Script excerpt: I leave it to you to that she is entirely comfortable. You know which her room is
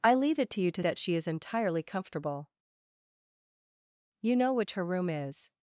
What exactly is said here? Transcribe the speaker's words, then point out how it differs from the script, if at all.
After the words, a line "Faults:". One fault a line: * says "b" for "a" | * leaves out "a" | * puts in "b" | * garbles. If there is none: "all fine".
I leave it to you to that she is entirely comfortable. You know which her room is
Faults:
all fine